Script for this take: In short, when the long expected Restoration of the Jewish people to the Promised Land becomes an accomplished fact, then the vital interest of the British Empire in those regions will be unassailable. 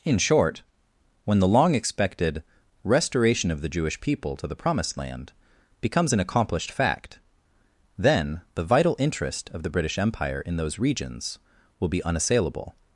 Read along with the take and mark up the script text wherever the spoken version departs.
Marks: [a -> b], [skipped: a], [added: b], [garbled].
In short, when the long expected Restoration of the Jewish people to the Promised Land becomes an accomplished fact, then the vital interest of the British Empire in those regions will be unassailable.